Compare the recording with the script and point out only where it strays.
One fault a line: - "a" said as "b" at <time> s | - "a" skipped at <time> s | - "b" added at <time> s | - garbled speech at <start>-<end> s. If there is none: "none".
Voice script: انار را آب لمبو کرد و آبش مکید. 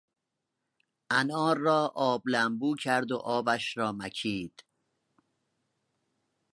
- "را" added at 3.8 s